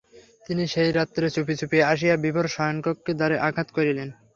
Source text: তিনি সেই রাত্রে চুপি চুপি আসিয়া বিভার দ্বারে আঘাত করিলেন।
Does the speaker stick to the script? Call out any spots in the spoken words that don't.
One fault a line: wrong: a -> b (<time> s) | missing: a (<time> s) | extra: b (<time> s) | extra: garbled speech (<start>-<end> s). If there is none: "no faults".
extra: শয়নকক্ষের (2.5 s)